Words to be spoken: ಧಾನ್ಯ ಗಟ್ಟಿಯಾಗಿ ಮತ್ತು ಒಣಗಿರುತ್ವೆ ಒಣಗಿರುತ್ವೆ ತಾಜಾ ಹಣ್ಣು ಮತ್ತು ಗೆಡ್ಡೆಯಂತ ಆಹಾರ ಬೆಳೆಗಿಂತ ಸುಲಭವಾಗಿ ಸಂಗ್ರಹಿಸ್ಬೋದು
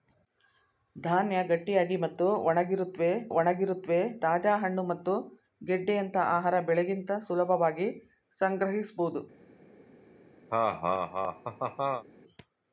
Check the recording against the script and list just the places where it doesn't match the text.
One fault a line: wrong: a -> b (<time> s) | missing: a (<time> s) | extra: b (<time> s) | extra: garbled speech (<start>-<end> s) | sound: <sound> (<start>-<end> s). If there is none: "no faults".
sound: laugh (10.5-12.0 s)